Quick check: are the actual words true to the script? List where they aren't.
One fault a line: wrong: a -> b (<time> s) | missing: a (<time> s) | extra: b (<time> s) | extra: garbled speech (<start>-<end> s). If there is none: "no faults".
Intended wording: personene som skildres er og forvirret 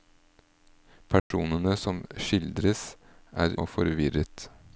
no faults